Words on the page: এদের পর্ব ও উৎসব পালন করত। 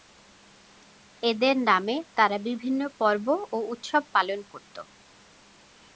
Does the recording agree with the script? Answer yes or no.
no